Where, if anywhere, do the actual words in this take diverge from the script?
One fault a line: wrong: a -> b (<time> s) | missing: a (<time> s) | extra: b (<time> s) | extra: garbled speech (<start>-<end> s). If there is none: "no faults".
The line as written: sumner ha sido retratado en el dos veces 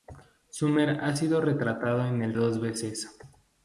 no faults